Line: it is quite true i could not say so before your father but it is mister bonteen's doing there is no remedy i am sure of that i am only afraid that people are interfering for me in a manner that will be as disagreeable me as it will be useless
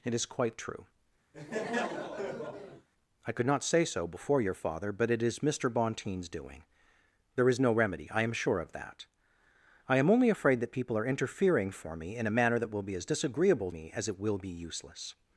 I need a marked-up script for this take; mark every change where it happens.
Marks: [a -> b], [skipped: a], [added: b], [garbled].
it is quite true i could not say so before your father but it is mister bonteen's doing there is no remedy i am sure of that i am only afraid that people are interfering for me in a manner that will be as disagreeable me as it will be useless